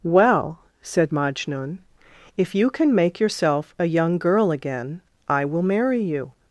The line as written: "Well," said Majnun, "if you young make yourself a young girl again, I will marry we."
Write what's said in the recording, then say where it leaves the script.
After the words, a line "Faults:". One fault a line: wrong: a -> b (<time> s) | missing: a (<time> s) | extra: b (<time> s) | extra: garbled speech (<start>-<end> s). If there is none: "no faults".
"Well," said Majnun, "if you can make yourself a young girl again, I will marry you."
Faults:
wrong: young -> can (2.7 s)
wrong: we -> you (6.0 s)